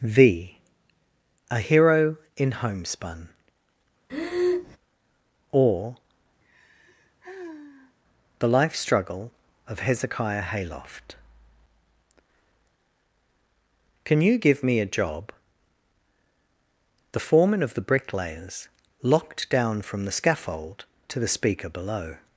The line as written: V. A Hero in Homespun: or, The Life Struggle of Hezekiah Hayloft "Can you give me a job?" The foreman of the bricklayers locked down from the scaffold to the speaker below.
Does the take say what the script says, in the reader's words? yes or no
yes